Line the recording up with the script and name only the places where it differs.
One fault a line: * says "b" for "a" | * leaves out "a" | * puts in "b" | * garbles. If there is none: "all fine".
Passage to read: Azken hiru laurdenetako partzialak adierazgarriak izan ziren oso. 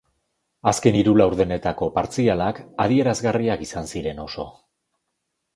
all fine